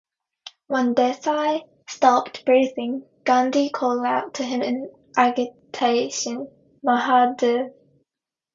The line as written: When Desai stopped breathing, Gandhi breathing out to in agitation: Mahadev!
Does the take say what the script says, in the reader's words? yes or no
no